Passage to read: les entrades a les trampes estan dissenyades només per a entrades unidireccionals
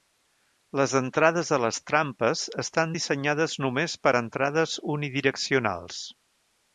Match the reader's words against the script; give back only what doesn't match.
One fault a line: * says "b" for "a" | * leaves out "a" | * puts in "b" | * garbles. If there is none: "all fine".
all fine